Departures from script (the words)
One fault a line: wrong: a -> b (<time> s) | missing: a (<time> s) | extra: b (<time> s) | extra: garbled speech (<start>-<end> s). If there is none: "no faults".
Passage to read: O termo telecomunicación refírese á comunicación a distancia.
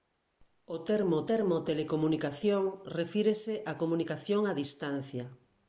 extra: termo (1.3 s)